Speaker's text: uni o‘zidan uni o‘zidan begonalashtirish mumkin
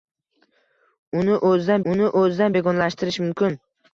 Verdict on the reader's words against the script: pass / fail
pass